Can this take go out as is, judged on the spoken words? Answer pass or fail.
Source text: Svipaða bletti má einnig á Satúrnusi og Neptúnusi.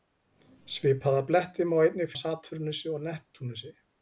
pass